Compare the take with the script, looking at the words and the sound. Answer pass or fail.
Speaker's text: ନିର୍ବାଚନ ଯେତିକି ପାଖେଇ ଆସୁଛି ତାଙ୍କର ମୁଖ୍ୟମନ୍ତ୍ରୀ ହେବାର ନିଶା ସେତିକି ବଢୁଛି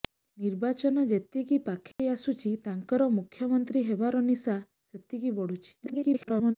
fail